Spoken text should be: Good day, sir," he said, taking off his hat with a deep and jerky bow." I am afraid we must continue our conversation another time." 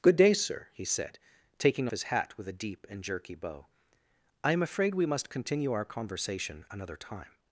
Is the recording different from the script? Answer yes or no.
yes